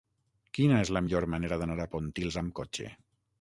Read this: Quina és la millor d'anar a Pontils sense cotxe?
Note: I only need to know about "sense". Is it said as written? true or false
false